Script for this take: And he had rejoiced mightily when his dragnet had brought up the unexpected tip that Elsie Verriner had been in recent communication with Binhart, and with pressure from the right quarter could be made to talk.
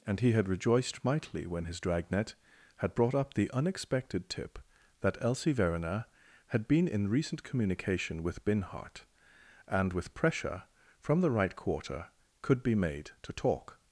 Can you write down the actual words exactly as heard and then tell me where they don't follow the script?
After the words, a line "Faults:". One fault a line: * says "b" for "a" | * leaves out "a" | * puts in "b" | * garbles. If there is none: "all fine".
And he had rejoiced mightily when his dragnet had brought up the unexpected tip that Elsie Verriner had been in recent communication with Binhart, and with pressure from the right quarter could be made to talk.
Faults:
all fine